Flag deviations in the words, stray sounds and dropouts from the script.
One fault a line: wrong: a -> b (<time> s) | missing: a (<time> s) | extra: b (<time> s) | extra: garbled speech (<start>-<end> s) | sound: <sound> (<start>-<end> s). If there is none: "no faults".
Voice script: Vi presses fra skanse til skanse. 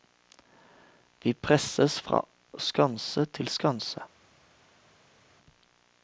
no faults